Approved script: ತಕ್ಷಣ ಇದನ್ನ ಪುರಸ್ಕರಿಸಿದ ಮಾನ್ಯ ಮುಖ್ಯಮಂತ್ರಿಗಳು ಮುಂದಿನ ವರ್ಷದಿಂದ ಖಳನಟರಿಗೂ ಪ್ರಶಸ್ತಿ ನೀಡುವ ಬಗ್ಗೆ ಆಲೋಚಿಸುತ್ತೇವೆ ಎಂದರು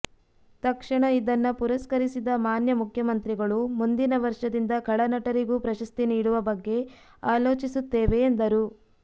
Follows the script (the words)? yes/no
yes